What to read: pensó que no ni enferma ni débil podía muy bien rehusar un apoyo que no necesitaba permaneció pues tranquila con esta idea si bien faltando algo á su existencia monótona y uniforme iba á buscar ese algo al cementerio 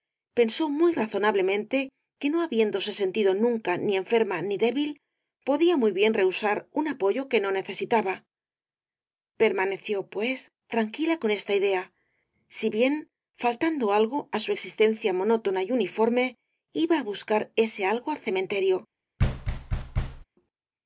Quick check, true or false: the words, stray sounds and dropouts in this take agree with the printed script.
false